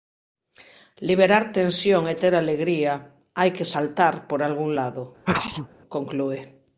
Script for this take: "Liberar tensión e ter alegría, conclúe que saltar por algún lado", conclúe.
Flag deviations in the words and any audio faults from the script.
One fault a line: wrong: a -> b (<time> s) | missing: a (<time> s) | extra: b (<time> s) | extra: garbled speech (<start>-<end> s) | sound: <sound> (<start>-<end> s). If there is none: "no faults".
wrong: conclúe -> hai (3.4 s)
sound: sneeze (5.2-5.7 s)